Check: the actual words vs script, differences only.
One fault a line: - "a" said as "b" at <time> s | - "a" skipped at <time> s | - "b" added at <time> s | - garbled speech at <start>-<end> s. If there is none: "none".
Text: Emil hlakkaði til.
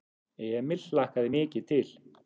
- "mikið" added at 1.3 s